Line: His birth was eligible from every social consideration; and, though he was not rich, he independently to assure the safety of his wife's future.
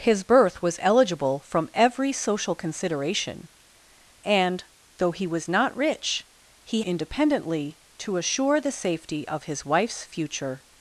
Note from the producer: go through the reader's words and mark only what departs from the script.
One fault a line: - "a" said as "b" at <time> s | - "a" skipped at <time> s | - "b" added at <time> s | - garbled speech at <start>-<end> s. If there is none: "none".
none